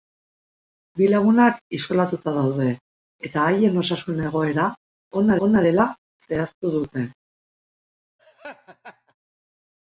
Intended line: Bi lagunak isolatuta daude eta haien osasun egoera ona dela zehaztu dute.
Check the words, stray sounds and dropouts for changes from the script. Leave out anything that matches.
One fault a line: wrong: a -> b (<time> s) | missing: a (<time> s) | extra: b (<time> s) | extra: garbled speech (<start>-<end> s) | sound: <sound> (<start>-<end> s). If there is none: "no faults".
extra: ona (5.5 s)
sound: laugh (8.2-9.2 s)